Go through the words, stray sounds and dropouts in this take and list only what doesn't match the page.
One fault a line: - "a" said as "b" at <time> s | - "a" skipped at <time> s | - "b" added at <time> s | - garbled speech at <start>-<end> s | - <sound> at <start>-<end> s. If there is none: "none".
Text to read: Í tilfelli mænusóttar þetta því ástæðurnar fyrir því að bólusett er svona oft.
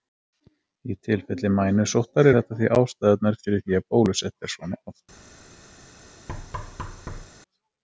- thud at 6.3-7.3 s